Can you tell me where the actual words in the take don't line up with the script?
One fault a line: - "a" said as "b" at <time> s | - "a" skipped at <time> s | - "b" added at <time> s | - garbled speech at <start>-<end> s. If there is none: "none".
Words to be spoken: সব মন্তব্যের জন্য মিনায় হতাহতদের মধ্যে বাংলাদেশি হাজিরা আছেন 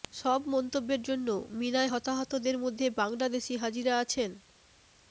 none